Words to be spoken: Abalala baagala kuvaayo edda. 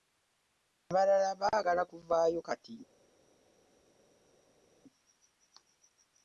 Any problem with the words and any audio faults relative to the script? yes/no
yes